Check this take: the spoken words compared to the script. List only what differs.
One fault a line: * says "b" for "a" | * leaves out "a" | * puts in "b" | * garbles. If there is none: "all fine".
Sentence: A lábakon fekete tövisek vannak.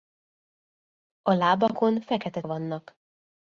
* leaves out "tövisek"